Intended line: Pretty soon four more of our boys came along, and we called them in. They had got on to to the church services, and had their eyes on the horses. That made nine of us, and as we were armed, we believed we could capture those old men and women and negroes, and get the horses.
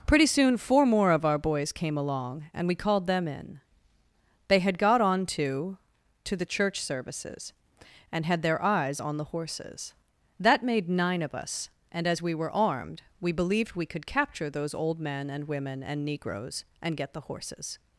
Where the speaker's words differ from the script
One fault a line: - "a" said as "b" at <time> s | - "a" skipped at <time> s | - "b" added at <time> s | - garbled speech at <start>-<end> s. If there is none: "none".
none